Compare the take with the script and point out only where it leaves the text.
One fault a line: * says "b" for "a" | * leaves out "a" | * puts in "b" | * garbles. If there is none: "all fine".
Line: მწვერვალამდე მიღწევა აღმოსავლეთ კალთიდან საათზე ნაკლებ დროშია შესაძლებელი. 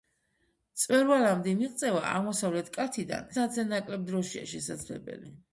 all fine